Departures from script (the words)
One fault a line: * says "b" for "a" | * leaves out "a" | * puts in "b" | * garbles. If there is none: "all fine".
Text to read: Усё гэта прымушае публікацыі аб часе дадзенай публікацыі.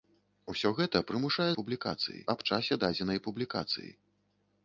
all fine